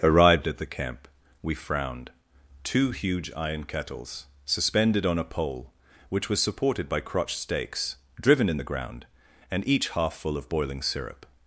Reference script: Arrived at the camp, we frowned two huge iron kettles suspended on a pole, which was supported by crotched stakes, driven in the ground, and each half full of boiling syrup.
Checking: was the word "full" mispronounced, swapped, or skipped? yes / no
no